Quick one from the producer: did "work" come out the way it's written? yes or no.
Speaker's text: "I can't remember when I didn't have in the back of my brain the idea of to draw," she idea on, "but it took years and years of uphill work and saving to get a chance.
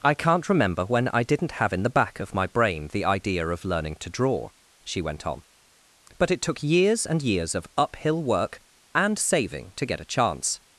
yes